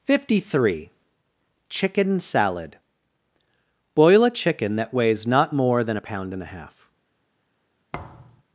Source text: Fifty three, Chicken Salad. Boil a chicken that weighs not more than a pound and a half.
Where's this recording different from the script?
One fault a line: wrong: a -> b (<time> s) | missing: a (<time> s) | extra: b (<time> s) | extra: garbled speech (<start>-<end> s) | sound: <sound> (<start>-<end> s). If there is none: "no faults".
sound: thud (7.9-8.4 s)